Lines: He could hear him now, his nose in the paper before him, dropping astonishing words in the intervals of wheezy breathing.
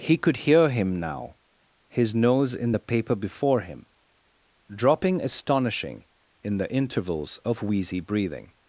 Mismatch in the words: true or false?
true